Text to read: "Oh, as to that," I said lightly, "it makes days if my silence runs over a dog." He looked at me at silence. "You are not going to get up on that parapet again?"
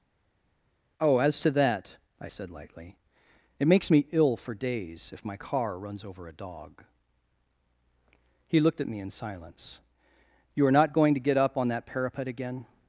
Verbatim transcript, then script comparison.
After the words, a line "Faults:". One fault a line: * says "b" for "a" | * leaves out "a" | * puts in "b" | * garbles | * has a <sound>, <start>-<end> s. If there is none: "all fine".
"Oh, as to that," I said lightly, "it makes me ill for days if my car runs over a dog." He looked at me in silence. "You are not going to get up on that parapet again?"
Faults:
* puts in "me ill for"
* says "car" for "silence"
* says "in" for "at"